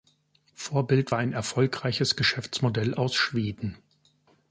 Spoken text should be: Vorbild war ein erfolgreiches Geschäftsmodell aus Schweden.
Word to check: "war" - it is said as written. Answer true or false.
true